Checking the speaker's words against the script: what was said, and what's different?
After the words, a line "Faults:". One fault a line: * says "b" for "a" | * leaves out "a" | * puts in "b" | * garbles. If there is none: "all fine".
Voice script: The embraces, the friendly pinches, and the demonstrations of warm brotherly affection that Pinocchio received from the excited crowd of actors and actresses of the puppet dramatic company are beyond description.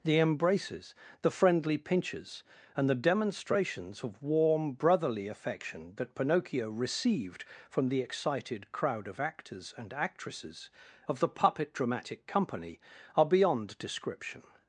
The embraces, the friendly pinches, and the demonstrations of warm brotherly affection that Pinocchio received from the excited crowd of actors and actresses of the puppet dramatic company are beyond description.
Faults:
all fine